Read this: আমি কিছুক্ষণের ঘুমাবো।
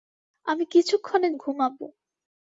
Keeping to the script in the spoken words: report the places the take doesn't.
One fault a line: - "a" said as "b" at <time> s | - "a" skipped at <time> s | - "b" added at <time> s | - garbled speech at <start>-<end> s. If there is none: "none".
none